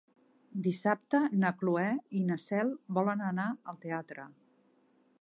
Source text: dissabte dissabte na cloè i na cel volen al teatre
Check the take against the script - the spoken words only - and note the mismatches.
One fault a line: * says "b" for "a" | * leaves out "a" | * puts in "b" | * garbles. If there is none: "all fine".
* leaves out "dissabte"
* puts in "anar"